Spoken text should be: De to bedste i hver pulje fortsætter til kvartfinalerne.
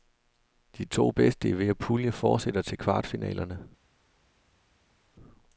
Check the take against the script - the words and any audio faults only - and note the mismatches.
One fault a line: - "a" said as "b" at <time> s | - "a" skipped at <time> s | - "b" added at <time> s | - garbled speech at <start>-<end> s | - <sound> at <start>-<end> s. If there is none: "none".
none